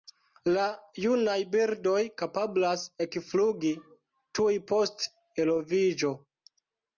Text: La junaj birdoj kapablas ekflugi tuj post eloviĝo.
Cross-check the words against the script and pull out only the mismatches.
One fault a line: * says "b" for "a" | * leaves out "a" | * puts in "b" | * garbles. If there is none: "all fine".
all fine